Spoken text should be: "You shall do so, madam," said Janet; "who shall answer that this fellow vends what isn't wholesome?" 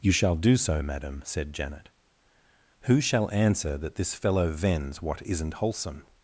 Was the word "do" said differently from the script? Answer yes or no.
no